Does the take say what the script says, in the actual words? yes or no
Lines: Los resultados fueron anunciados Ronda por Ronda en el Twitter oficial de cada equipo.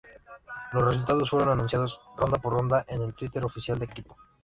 no